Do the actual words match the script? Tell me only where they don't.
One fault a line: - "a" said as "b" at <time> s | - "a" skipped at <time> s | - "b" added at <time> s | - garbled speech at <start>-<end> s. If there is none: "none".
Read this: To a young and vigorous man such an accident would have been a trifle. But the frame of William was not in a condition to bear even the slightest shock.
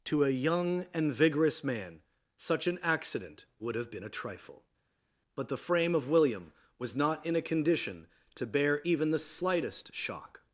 none